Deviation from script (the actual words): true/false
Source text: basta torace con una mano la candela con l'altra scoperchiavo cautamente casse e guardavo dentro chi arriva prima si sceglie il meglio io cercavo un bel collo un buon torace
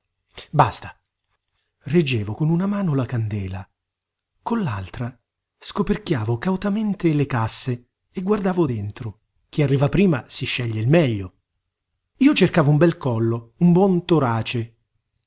true